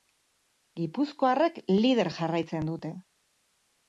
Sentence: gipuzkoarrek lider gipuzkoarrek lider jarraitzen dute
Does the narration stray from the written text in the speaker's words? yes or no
yes